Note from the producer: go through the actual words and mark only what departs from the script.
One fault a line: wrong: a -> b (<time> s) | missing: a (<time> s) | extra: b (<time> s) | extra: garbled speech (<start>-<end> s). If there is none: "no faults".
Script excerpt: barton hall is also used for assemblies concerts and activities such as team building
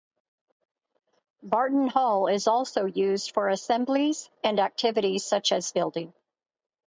missing: concerts (4.3 s)
missing: team (5.7 s)